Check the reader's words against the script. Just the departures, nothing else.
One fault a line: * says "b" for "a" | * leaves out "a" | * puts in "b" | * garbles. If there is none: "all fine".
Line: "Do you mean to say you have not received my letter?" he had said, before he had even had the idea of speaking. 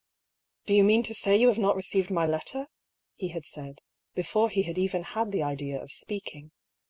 all fine